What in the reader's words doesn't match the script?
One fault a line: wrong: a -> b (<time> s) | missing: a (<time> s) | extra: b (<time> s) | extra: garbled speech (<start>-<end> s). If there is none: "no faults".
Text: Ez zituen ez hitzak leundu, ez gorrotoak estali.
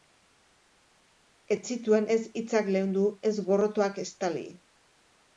no faults